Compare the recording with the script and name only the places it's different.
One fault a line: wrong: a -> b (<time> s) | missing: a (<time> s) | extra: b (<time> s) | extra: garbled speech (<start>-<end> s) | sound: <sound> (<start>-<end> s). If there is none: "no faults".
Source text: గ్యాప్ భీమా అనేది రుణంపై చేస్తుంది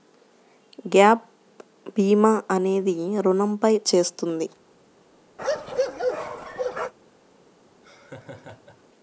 sound: bark (5.4-6.9 s)
sound: laugh (7.8-8.8 s)